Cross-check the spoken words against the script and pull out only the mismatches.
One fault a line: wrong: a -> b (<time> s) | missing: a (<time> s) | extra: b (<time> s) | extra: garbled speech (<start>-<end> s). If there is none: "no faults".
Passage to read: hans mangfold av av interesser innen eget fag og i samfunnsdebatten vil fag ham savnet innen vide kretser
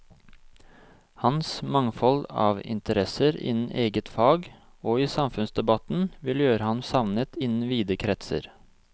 missing: av (2.6 s)
wrong: fag -> gjøre (6.5 s)